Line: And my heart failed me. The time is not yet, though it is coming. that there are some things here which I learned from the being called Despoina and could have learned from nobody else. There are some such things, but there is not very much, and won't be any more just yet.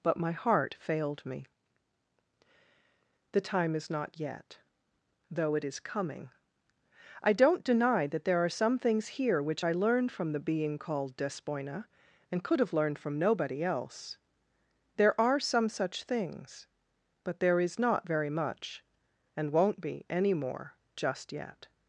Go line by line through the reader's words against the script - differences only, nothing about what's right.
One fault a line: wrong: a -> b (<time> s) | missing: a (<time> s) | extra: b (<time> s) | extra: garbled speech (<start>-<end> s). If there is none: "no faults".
wrong: And -> But (0.0 s)
extra: I don't deny (7.2 s)